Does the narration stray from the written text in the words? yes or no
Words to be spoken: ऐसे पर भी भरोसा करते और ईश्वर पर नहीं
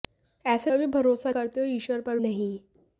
no